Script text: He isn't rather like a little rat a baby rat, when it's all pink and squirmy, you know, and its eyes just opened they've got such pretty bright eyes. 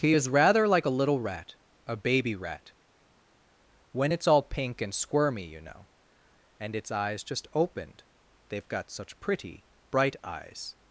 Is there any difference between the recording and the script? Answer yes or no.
yes